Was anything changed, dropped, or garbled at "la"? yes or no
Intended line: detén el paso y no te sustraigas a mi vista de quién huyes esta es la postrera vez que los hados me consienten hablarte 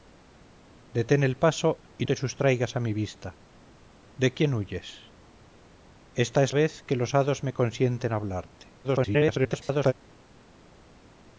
yes